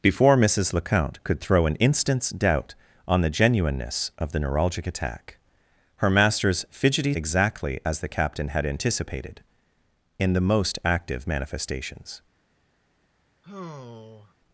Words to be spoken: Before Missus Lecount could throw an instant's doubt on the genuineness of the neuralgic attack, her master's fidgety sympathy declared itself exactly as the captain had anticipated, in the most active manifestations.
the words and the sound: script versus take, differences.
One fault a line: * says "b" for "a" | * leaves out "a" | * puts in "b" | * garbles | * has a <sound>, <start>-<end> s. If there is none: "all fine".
* leaves out "sympathy declared itself"
* has a sigh, 13.4-14.3 s